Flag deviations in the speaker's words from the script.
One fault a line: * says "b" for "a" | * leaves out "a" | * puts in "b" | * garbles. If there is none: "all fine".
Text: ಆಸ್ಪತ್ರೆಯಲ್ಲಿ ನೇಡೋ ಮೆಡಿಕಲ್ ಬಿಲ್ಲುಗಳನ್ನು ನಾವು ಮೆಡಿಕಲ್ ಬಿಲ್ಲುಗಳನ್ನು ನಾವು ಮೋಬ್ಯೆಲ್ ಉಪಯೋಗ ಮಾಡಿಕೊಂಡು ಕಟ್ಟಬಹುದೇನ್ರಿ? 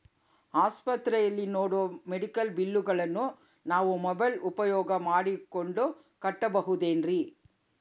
* leaves out "ಮೆಡಿಕಲ್ ಬಿಲ್ಲುಗಳನ್ನು ನಾವು"